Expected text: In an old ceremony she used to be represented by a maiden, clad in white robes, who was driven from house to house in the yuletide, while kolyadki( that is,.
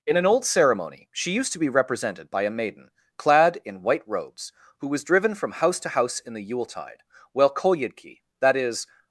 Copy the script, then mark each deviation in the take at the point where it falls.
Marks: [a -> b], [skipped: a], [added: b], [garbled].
In an old ceremony she used to be represented by a maiden, clad in white robes, who was driven from house to house in the yuletide, while kolyadki( that is,.